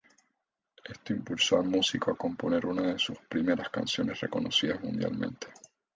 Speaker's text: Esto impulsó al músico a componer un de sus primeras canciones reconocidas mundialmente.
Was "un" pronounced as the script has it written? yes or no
no